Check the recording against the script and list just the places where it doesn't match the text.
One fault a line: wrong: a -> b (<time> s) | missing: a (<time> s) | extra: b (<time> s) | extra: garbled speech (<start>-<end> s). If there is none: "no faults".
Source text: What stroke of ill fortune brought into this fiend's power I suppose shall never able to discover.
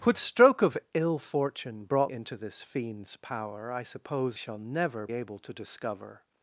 no faults